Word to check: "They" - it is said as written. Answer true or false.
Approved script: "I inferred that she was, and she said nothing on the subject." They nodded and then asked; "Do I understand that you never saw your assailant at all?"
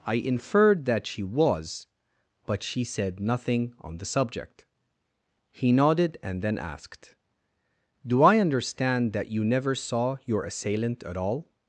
false